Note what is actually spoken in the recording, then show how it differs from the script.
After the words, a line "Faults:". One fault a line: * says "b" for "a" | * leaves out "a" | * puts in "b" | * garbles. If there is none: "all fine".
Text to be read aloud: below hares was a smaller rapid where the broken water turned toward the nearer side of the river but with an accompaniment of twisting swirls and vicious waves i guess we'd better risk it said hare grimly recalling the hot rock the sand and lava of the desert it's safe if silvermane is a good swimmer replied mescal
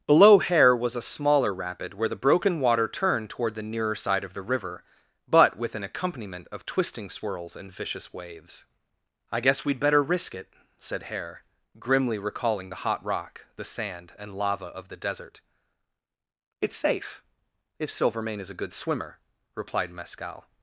below hare was a smaller rapid where the broken water turned toward the nearer side of the river but with an accompaniment of twisting swirls and vicious waves i guess we'd better risk it said hare grimly recalling the hot rock the sand and lava of the desert it's safe if silvermane is a good swimmer replied mescal
Faults:
* says "hare" for "hares"